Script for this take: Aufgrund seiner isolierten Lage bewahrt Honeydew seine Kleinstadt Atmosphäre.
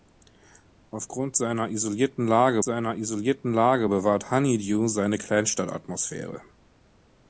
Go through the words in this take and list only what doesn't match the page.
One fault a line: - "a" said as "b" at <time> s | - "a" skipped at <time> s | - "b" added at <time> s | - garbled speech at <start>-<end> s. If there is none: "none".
- "seiner isolierten Lage" added at 2.6 s